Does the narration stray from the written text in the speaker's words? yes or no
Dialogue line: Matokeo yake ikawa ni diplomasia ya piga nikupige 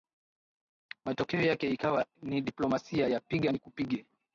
no